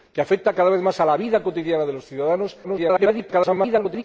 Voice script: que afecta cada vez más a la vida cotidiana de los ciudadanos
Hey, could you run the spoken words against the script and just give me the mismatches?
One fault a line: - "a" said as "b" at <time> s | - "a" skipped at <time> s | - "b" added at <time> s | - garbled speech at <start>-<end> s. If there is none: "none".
- garbled speech at 2.6-4.0 s